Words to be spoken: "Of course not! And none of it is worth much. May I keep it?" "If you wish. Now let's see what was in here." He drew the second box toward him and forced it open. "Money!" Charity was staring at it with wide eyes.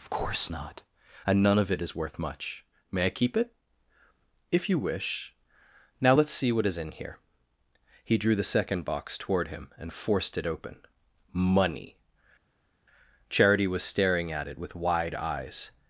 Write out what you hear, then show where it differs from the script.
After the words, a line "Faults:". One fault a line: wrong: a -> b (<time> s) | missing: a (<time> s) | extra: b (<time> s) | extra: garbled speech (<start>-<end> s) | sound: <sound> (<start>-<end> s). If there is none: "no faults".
"Of course not! And none of it is worth much. May I keep it?" "If you wish. Now let's see what is in here." He drew the second box toward him and forced it open. "Money!" Charity was staring at it with wide eyes.
Faults:
wrong: was -> is (6.7 s)